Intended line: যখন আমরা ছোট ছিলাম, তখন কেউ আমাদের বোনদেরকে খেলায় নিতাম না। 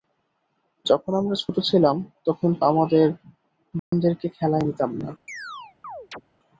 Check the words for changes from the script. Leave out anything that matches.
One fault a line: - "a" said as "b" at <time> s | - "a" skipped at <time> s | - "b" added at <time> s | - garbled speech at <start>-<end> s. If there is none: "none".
- "কেউ" skipped at 2.5 s